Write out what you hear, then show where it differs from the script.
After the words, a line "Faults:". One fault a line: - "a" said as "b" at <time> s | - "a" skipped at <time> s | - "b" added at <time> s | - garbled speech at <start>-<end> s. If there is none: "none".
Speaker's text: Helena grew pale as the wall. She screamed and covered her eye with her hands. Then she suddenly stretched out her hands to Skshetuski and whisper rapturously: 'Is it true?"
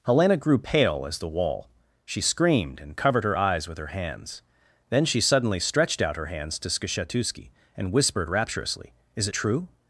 Helena grew pale as the wall. She screamed and covered her eyes with her hands. Then she suddenly stretched out her hands to Skshetuski and whispered rapturously: 'Is it true?"
Faults:
- "eye" said as "eyes" at 3.3 s
- "whisper" said as "whispered" at 7.9 s